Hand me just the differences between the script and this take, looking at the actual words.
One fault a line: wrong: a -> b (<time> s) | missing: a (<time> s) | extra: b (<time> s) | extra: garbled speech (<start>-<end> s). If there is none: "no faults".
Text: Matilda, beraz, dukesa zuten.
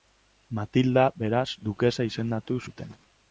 extra: izendatu (2.1 s)